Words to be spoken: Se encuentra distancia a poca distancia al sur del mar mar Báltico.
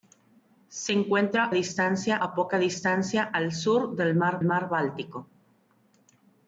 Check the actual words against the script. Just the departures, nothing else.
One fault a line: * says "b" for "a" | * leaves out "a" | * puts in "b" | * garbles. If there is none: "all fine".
all fine